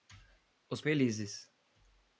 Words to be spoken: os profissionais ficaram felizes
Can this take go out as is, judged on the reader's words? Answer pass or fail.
fail